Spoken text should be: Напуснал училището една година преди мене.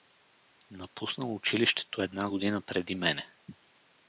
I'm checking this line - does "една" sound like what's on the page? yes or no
yes